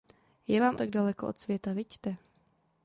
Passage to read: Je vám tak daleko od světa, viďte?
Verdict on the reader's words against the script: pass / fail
pass